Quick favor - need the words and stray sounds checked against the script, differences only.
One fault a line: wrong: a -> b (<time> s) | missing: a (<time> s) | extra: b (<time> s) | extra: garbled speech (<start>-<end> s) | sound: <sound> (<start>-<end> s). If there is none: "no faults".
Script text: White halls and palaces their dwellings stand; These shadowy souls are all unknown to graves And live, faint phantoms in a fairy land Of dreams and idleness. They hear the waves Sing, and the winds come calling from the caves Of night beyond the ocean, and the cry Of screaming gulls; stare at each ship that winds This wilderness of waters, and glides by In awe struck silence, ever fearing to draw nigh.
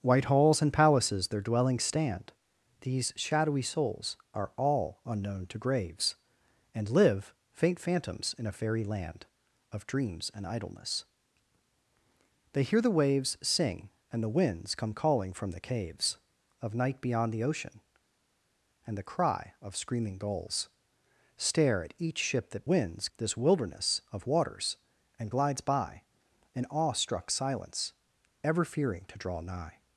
no faults